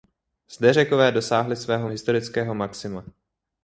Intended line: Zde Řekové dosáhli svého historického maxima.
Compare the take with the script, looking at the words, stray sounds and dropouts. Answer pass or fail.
pass